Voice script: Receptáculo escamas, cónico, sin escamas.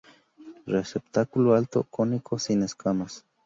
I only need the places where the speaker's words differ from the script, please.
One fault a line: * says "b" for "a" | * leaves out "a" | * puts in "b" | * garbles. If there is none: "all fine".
* says "alto" for "escamas"